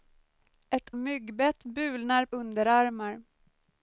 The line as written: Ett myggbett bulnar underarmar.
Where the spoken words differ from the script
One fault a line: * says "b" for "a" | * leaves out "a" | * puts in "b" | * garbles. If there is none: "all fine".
all fine